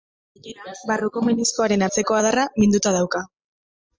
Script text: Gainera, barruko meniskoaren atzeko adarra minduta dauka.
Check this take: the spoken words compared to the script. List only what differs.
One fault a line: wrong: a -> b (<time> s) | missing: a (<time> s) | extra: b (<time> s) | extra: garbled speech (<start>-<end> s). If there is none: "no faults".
no faults